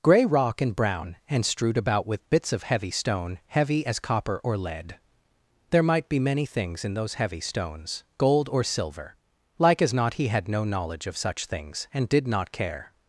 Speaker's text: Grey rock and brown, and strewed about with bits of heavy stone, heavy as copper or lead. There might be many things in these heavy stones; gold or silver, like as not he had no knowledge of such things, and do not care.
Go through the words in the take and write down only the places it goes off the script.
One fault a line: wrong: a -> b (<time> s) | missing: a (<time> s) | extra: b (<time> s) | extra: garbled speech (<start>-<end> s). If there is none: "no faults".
wrong: these -> those (7.0 s)
wrong: do -> did (12.1 s)